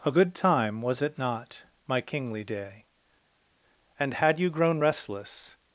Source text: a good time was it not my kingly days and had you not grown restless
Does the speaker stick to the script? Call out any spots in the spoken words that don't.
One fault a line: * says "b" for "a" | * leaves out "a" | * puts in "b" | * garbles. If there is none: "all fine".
* says "day" for "days"
* leaves out "not"